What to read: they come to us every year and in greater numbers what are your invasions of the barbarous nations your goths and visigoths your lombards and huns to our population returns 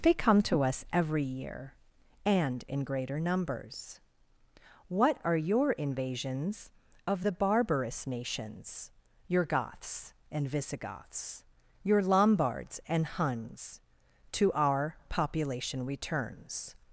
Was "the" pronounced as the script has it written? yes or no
yes